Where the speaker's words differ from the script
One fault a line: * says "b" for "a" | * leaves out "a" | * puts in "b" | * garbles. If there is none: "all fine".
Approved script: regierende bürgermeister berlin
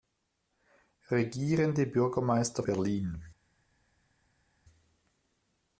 all fine